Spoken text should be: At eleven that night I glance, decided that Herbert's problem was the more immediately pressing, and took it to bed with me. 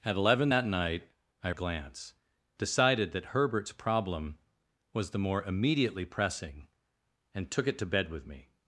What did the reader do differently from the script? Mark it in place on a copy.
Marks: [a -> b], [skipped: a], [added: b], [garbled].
At eleven that night I glance, decided that Herbert's problem was the more immediately pressing, and took it to bed with me.